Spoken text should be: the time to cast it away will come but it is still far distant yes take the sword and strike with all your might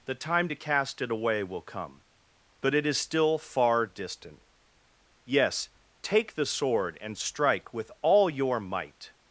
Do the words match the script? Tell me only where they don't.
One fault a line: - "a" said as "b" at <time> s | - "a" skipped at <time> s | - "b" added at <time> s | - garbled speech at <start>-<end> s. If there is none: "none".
none